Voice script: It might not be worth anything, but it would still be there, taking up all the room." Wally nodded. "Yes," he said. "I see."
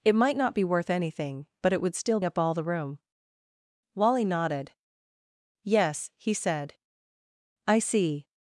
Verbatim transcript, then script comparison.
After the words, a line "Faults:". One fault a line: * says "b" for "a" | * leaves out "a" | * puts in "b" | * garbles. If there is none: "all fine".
It might not be worth anything, but it would still up all the room." Wally nodded. "Yes," he said. "I see."
Faults:
* leaves out "be there taking"